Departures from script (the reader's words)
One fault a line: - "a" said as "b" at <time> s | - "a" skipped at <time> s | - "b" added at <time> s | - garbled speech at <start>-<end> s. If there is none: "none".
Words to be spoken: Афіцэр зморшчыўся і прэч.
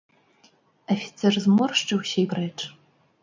none